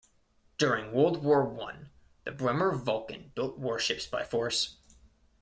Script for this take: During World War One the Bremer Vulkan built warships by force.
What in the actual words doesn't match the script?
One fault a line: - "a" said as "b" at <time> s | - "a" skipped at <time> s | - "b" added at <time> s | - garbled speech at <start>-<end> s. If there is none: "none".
none